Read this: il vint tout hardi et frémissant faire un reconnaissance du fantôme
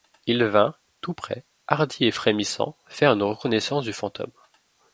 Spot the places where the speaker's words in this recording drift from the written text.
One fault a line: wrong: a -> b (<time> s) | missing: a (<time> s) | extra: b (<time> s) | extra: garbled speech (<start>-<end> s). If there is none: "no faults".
extra: près (1.1 s)
wrong: un -> une (3.1 s)